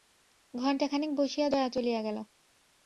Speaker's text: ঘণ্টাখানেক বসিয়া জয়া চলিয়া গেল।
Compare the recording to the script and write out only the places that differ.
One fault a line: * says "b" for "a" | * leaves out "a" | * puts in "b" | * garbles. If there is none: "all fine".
all fine